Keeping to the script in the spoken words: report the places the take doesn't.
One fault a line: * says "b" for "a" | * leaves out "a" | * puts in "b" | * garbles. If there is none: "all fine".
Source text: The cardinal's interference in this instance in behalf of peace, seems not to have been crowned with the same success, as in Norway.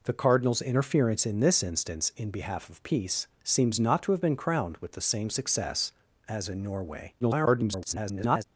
* garbles